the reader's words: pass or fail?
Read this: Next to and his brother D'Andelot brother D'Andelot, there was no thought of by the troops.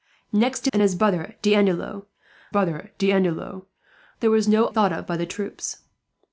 pass